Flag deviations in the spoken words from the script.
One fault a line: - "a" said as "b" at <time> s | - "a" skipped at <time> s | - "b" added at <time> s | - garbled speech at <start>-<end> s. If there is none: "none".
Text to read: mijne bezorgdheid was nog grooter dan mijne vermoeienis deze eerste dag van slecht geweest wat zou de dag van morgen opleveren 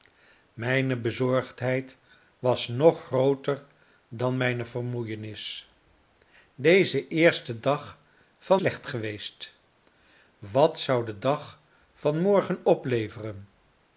none